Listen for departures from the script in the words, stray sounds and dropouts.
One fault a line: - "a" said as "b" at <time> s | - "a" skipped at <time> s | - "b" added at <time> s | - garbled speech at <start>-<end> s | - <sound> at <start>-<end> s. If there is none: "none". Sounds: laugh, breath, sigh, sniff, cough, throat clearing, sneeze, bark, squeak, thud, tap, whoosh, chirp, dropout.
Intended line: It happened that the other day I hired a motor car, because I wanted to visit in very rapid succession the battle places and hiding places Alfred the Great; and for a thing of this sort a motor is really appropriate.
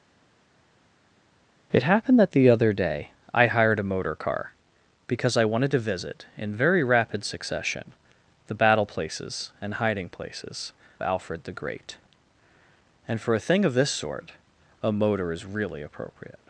none